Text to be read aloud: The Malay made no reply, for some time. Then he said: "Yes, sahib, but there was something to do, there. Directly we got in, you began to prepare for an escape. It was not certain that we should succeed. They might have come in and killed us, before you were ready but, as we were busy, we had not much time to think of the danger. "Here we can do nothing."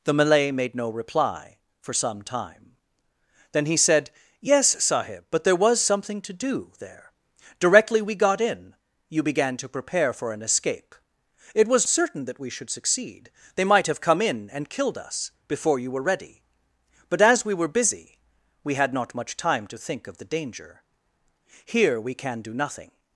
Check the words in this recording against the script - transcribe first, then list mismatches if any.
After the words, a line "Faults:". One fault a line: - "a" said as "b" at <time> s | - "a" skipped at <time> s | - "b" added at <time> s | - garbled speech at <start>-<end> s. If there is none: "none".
The Malay made no reply, for some time. Then he said: "Yes, sahib, but there was something to do, there. Directly we got in, you began to prepare for an escape. It was certain that we should succeed. They might have come in and killed us, before you were ready but, as we were busy, we had not much time to think of the danger. "Here we can do nothing."
Faults:
- "not" skipped at 11.8 s